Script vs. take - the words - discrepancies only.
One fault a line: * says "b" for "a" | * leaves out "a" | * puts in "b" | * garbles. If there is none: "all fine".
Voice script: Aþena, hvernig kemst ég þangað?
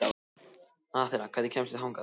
all fine